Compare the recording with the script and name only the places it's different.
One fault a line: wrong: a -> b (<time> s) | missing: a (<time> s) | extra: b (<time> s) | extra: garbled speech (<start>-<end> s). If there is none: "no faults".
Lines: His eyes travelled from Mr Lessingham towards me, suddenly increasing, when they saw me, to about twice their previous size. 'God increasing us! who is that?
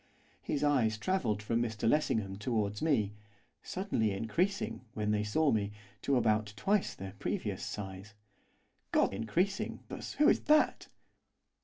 no faults